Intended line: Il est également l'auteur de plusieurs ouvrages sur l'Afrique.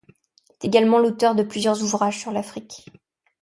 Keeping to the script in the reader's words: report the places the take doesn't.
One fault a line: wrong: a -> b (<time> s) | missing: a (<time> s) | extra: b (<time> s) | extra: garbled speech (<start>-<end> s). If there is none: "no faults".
no faults